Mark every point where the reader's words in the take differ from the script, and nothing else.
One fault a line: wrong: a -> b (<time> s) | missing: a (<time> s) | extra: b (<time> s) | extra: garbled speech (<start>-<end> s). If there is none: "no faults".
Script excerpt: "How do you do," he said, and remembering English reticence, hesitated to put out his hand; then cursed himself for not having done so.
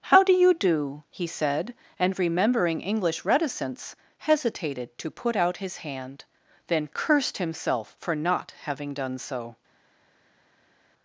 no faults